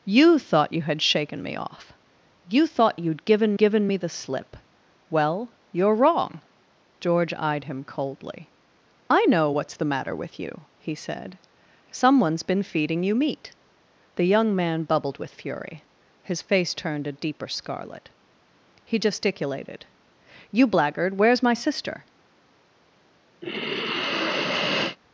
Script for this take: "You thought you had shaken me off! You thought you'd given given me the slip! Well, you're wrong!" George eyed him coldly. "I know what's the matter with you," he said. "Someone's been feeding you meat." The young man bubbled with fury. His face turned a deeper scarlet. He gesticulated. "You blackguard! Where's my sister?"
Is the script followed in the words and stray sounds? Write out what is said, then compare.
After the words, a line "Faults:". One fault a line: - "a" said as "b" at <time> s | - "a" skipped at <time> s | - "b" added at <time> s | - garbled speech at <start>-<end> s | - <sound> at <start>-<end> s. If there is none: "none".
"You thought you had shaken me off! You thought you'd given given me the slip! Well, you're wrong!" George eyed him coldly. "I know what's the matter with you," he said. "Someone's been feeding you meat." The young man bubbled with fury. His face turned a deeper scarlet. He gesticulated. "You blackguard! Where's my sister?"
Faults:
- sigh at 23.4-25.0 s